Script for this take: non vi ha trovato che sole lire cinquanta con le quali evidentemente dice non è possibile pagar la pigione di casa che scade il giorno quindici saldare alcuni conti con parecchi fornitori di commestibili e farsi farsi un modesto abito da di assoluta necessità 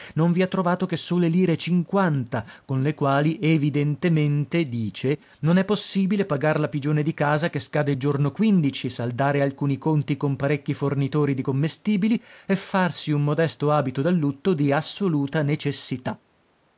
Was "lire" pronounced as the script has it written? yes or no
yes